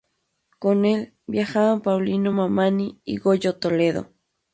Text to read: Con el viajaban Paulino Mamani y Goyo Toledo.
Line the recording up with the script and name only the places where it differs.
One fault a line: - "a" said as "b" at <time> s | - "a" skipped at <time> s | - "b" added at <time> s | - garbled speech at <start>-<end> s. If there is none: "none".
none